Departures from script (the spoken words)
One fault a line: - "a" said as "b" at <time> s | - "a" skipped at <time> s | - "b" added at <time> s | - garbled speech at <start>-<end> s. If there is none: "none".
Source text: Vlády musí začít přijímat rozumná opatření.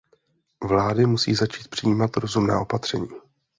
none